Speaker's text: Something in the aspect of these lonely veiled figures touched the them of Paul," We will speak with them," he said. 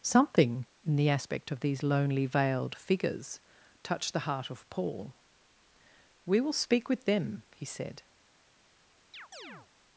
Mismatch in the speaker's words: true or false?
true